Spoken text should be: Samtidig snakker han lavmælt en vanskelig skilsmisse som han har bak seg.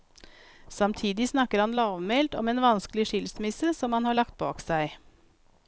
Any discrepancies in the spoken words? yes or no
yes